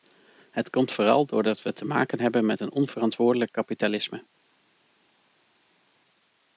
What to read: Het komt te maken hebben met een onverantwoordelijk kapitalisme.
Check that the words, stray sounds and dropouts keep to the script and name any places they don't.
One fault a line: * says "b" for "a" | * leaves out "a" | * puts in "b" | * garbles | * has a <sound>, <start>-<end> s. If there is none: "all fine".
* puts in "vooral doordat we"